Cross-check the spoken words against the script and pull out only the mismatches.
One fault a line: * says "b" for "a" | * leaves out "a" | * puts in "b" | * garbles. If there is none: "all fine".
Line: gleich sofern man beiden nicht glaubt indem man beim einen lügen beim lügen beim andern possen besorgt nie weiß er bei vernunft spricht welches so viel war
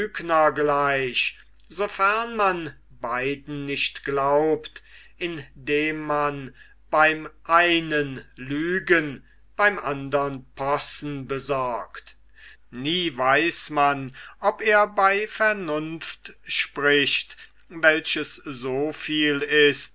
* leaves out "lügen beim"
* puts in "man ob"
* says "ist" for "war"